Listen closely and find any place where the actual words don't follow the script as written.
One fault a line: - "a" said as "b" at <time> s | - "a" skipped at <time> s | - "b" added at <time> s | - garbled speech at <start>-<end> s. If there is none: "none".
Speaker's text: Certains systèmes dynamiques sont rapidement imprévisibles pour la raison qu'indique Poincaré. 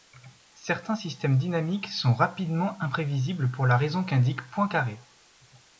none